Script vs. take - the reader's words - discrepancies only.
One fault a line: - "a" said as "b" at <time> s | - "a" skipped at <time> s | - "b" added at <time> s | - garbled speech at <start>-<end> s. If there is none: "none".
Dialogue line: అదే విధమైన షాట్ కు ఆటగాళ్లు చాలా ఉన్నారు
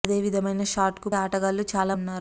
none